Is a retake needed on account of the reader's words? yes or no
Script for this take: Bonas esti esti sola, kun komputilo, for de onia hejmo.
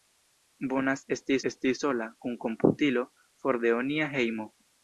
no